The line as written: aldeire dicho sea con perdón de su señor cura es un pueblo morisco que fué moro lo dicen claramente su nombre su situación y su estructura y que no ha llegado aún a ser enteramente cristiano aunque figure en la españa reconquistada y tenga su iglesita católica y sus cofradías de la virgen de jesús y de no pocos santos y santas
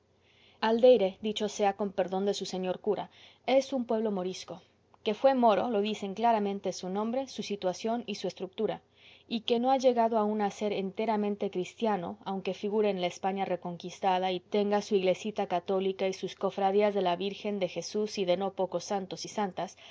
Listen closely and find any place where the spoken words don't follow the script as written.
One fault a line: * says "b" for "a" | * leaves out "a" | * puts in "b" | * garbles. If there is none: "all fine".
all fine